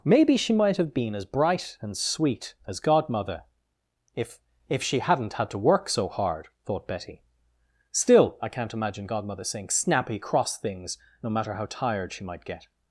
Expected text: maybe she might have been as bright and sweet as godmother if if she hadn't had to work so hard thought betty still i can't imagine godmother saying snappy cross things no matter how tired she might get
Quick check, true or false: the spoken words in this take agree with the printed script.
true